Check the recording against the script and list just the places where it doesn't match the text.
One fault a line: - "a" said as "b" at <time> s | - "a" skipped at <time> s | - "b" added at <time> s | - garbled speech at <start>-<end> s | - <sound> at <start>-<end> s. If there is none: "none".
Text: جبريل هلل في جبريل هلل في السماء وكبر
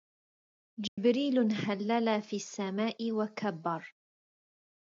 - dropout at 0.9-1.0 s
- "جبريل هلل في" skipped at 2.4 s